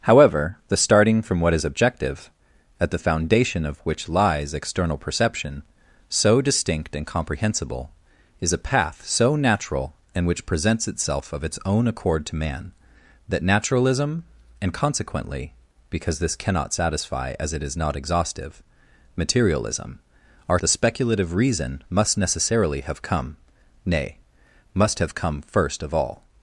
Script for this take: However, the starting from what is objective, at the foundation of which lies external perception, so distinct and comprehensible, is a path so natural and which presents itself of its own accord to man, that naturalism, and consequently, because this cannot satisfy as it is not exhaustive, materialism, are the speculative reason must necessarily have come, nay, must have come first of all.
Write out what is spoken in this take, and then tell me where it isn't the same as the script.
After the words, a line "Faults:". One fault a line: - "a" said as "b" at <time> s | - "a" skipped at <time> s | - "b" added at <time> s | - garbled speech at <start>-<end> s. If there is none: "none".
However, the starting from what is objective, at the foundation of which lies external perception, so distinct and comprehensible, is a path so natural and which presents itself of its own accord to man, that naturalism, and consequently, because this cannot satisfy as it is not exhaustive, materialism, are the speculative reason must necessarily have come, nay, must have come first of all.
Faults:
none